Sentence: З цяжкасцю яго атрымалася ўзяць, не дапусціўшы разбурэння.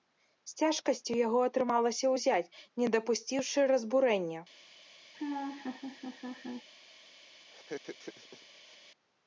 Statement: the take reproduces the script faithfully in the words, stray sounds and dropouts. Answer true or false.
false